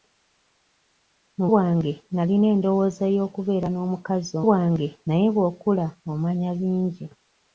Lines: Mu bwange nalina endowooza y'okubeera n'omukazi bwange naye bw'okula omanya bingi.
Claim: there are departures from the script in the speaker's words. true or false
false